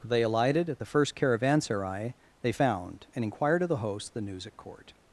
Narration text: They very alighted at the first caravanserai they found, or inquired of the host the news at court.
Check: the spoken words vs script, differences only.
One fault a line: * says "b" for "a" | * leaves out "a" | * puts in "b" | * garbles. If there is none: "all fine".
* leaves out "very"
* says "and" for "or"